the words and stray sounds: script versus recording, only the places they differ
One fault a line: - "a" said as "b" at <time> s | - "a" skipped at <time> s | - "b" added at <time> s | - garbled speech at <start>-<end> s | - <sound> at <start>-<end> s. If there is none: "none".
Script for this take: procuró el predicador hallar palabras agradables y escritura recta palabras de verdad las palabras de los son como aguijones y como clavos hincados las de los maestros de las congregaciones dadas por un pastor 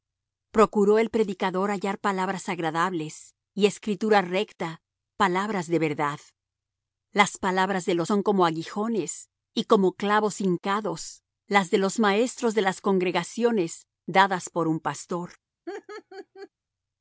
- laugh at 15.7-16.5 s